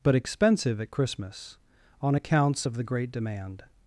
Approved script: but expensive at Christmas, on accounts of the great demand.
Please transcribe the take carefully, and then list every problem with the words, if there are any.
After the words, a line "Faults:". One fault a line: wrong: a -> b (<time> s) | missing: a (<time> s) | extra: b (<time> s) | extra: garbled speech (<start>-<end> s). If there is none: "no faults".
but expensive at Christmas, on accounts of the great demand.
Faults:
no faults